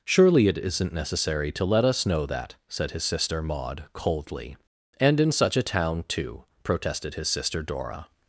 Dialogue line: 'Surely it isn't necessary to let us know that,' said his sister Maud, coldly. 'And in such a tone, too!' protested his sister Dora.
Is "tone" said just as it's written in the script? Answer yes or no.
no